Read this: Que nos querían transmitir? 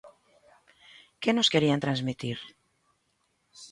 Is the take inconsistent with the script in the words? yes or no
no